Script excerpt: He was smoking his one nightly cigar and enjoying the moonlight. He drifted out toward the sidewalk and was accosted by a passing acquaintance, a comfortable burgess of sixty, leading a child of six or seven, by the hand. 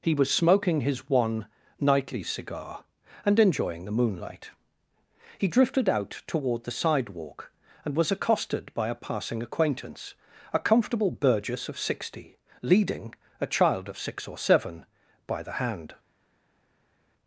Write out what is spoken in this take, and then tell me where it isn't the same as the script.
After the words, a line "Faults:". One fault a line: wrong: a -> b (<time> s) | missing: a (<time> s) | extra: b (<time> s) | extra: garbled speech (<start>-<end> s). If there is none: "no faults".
He was smoking his one nightly cigar and enjoying the moonlight. He drifted out toward the sidewalk and was accosted by a passing acquaintance, a comfortable burgess of sixty, leading a child of six or seven, by the hand.
Faults:
no faults